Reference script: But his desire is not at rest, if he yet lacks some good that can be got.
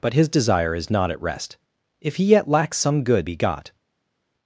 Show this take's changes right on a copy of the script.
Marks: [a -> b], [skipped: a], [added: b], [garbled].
But his desire is not at rest, if he yet lacks some good [skipped: that can] be got.